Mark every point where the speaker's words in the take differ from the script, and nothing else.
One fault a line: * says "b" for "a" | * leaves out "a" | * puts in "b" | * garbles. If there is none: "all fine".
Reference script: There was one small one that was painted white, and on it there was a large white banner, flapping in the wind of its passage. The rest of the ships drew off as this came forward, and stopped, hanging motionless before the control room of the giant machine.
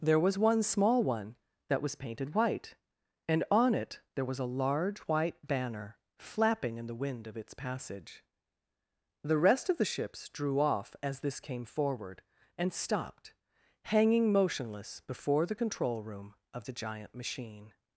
all fine